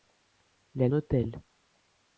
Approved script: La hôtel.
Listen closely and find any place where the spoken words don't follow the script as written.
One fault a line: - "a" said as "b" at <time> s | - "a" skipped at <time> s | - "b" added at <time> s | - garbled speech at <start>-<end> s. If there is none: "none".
none